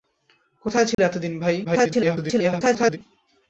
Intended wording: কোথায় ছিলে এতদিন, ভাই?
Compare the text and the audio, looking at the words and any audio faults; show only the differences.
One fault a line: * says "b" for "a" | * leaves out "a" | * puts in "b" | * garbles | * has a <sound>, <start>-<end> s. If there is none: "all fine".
* has a dropout, 0.9-1.0 s
* garbles